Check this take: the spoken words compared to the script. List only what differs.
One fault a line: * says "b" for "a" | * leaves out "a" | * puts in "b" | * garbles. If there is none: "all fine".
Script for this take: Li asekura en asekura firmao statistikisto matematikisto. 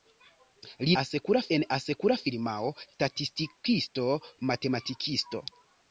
all fine